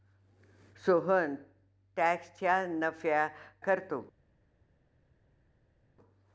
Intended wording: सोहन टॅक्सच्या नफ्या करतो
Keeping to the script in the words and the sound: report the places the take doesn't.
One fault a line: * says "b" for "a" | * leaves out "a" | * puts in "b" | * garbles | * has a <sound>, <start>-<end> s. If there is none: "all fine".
all fine